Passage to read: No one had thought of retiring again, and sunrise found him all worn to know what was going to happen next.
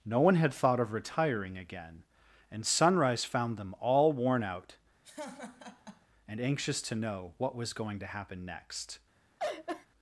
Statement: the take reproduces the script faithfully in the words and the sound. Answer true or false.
false